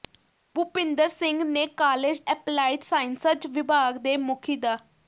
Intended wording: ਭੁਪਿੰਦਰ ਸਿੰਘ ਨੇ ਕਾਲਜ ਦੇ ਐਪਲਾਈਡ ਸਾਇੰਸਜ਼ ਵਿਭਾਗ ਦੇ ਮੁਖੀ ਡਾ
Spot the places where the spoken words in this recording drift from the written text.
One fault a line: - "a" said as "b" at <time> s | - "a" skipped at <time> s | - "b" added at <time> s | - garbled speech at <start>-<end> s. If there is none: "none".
- "ਦੇ" skipped at 2.2 s